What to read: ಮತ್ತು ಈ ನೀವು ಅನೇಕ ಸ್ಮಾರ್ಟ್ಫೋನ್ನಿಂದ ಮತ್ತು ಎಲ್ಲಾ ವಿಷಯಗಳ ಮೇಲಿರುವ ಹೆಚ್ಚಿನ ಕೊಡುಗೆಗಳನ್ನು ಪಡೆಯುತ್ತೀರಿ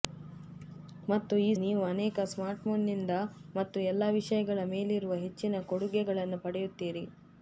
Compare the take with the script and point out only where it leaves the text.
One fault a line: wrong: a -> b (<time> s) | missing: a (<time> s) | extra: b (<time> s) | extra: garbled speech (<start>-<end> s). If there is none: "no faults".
no faults